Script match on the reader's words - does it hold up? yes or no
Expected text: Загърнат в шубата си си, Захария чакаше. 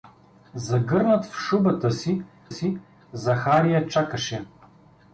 yes